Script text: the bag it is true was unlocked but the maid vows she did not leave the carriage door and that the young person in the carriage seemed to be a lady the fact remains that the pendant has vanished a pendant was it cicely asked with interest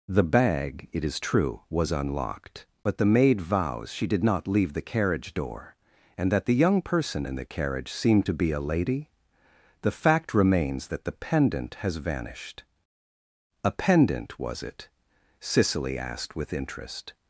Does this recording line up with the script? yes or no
yes